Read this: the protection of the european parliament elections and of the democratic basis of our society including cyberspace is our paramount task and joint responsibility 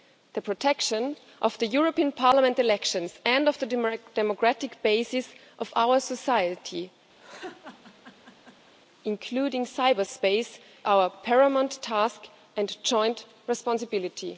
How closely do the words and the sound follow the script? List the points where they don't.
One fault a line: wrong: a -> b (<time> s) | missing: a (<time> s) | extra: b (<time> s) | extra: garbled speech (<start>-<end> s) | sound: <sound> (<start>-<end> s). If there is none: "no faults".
sound: laugh (7.2-8.7 s)
missing: is (10.6 s)